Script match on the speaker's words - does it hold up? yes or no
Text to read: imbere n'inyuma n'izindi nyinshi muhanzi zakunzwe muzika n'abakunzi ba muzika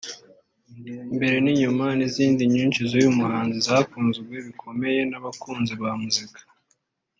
no